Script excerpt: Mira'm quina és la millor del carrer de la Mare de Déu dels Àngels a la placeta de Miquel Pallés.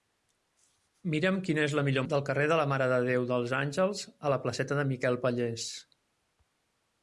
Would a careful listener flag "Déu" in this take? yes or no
no